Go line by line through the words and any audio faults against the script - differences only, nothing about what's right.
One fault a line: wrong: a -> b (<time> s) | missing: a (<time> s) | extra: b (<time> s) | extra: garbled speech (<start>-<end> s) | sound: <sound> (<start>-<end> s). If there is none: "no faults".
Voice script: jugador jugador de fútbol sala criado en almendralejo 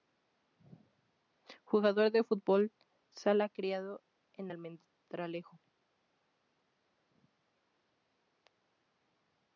missing: jugador (2.1 s)